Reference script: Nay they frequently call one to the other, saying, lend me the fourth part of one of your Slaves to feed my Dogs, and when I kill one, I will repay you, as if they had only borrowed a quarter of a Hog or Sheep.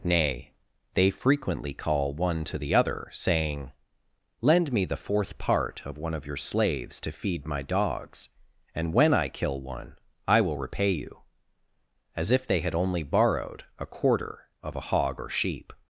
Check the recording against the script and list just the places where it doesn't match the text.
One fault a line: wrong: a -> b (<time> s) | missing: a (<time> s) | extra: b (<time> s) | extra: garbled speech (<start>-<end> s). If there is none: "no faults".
no faults